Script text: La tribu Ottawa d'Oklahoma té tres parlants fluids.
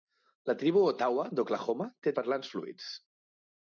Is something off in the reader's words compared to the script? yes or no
yes